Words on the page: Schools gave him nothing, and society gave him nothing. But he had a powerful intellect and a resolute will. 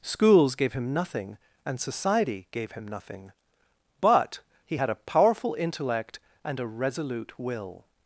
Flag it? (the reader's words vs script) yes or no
no